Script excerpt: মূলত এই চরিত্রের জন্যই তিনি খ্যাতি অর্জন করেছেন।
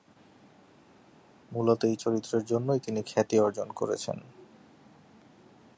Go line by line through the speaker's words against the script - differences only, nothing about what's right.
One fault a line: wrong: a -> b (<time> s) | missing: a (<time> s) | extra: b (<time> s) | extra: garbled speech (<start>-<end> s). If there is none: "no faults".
no faults